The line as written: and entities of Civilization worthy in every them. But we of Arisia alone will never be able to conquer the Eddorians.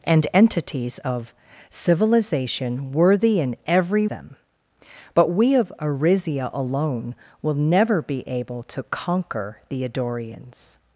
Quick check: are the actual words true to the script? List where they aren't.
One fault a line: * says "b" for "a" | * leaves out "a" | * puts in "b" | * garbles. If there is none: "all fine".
all fine